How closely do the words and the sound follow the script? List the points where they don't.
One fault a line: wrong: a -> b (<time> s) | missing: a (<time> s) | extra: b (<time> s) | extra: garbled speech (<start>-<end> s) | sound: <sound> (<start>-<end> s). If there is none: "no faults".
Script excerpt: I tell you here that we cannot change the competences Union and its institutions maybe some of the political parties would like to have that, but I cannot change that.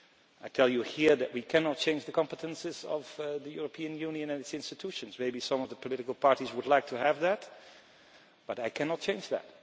extra: of the European (2.8 s)